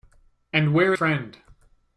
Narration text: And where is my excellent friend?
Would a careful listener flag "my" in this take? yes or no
yes